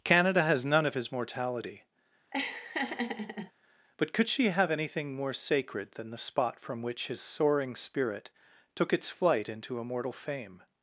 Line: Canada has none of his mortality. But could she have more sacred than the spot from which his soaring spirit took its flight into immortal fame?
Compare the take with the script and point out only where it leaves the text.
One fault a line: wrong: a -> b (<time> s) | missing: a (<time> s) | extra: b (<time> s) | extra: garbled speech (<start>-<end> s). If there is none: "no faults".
extra: anything (4.7 s)